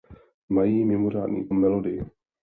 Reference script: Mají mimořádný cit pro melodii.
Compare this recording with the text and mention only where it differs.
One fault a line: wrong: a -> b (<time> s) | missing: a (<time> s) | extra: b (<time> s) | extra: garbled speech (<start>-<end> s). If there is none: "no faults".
missing: cit pro (1.5 s)